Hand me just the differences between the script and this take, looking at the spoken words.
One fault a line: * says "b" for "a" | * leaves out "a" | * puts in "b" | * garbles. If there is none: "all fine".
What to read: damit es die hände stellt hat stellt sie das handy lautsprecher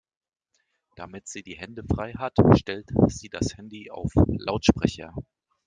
* says "sie" for "es"
* says "frei" for "stellt"
* puts in "auf"